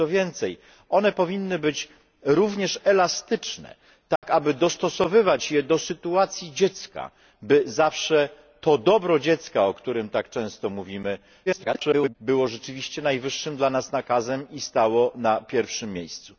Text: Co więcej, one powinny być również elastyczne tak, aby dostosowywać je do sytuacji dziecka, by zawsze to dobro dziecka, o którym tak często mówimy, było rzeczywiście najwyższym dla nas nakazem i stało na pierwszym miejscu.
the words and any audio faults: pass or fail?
fail